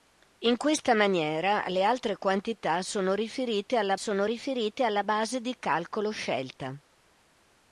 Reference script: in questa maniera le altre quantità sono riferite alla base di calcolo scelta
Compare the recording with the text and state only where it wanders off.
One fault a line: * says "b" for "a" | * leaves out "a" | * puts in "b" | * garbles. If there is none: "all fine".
* puts in "sono riferite alla"